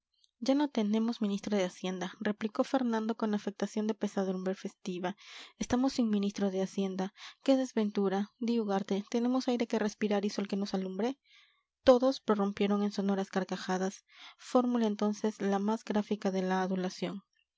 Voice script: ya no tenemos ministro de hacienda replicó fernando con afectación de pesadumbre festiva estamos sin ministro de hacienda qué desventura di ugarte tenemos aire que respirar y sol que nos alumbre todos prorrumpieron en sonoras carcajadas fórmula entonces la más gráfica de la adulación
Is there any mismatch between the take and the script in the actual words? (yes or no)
no